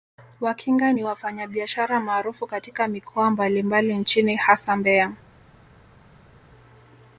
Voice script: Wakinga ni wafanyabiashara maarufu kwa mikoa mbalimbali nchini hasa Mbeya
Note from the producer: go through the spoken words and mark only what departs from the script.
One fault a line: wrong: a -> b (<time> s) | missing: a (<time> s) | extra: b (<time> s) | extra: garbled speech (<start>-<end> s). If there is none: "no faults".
wrong: kwa -> katika (2.5 s)